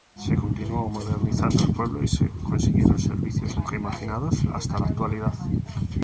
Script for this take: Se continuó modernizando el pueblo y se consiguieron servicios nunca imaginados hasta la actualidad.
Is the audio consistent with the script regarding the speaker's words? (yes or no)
yes